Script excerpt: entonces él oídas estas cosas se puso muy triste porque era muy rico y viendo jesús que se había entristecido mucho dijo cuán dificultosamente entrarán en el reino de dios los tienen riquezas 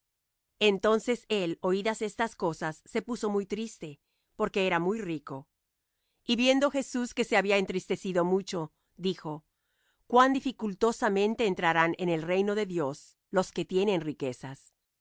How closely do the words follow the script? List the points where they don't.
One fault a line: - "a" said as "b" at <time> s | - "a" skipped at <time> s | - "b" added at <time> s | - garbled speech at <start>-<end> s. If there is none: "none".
- "que" added at 13.5 s